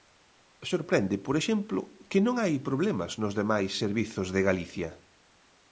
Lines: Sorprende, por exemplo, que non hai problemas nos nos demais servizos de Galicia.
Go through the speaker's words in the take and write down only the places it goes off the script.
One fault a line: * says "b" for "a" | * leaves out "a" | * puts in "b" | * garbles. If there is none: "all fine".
* leaves out "nos"